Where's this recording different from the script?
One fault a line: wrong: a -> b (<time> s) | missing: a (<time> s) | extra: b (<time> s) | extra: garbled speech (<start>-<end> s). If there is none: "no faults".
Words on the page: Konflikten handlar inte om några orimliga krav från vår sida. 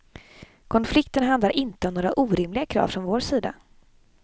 no faults